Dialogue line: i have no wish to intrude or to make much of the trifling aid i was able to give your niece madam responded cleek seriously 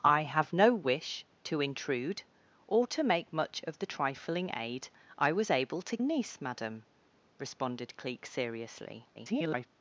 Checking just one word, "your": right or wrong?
wrong